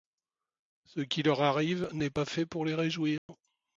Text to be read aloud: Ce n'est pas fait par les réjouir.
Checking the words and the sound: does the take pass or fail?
fail